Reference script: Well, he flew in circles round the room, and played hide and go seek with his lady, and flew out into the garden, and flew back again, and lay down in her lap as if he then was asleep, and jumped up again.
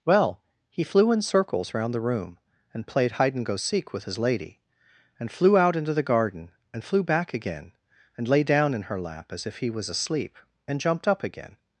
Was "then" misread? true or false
true